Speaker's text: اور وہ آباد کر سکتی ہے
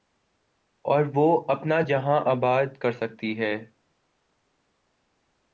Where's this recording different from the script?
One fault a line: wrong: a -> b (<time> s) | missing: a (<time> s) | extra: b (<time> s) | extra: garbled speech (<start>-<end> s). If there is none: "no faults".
extra: اپنا جہاں (1.5 s)